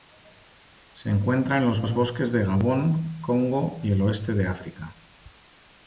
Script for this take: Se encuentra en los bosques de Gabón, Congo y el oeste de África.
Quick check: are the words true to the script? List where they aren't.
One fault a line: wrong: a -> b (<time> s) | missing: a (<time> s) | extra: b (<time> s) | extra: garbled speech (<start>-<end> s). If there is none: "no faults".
extra: los (1.8 s)